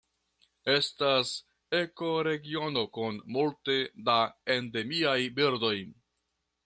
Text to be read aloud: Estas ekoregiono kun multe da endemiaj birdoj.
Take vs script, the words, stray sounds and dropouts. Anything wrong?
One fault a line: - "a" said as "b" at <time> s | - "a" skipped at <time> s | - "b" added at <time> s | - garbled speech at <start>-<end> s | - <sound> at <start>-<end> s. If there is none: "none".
none